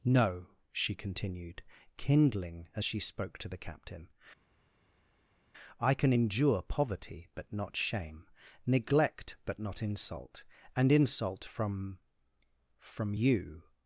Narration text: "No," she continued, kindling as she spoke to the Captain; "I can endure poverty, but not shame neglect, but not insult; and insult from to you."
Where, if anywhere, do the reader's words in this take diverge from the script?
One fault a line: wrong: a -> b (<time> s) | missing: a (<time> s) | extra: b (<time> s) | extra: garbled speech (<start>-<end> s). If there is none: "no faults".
wrong: to -> from (12.8 s)